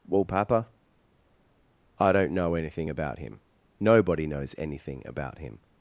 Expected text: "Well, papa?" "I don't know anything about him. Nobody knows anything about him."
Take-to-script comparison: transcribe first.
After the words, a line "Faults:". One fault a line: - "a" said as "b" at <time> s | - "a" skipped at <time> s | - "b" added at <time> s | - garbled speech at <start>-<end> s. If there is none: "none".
"Well, papa?" "I don't know anything about him. Nobody knows anything about him."
Faults:
none